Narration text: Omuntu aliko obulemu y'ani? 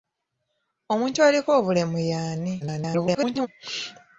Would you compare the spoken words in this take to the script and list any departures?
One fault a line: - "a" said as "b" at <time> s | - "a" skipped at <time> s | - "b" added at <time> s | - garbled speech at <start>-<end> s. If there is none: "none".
- garbled speech at 2.6-3.5 s